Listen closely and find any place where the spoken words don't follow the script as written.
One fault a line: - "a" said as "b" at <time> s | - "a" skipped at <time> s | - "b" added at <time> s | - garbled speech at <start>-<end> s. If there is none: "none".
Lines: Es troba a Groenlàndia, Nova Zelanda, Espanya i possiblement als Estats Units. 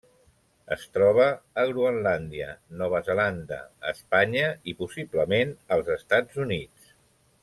none